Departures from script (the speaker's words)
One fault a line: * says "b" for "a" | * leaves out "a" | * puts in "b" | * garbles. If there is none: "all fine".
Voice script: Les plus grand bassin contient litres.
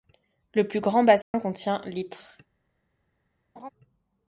* says "Le" for "Les"